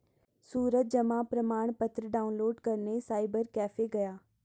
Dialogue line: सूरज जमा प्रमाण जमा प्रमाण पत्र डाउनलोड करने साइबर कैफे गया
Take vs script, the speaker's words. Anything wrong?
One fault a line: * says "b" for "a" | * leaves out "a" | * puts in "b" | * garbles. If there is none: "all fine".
* leaves out "जमा प्रमाण"